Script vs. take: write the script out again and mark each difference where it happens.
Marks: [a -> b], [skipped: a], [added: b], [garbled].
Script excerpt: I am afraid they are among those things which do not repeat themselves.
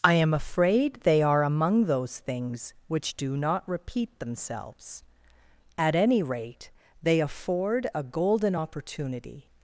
I am afraid they are among those things which do not repeat themselves. [added: At any rate they afford a golden opportunity]